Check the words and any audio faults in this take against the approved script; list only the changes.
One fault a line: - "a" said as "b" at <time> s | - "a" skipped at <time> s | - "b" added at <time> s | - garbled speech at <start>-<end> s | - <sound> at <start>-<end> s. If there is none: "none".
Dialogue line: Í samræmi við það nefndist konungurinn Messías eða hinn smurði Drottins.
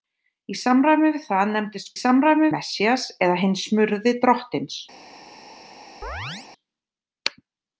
- "konungurinn" said as "samræmi" at 2.0 s
- chirp at 6.0-6.5 s